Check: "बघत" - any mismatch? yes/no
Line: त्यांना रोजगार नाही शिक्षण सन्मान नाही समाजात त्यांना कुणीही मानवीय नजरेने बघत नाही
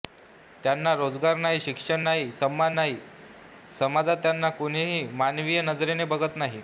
no